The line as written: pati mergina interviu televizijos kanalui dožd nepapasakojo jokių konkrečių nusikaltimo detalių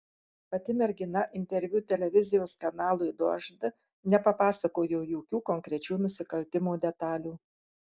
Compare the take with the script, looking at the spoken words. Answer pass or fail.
pass